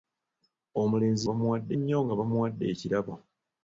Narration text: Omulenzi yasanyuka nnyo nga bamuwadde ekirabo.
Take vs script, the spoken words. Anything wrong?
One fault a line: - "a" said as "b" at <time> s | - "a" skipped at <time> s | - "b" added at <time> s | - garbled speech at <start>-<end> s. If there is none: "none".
- "yasanyuka" said as "bamuwadde" at 1.3 s